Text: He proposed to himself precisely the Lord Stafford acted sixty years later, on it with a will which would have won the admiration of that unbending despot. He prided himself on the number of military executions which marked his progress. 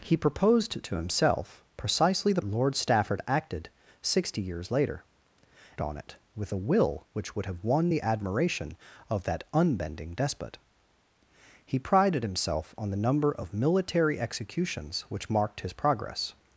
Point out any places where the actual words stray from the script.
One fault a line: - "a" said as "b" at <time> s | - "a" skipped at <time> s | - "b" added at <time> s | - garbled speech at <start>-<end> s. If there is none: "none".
none